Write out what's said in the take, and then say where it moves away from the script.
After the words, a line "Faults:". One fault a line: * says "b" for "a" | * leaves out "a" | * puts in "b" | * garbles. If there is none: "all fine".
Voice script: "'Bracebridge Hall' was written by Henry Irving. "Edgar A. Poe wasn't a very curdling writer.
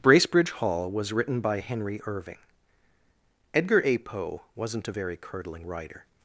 "'Bracebridge Hall' was written by Henry Irving. "Edgar A. Poe wasn't a very curdling writer.
Faults:
all fine